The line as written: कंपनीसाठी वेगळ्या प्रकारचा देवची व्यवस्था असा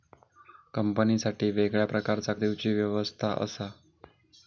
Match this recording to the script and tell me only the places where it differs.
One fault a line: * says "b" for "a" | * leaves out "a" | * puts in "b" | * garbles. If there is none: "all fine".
all fine